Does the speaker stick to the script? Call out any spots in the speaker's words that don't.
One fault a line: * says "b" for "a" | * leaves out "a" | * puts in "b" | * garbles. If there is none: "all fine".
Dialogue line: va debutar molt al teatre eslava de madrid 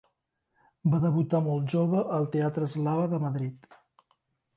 * puts in "jove"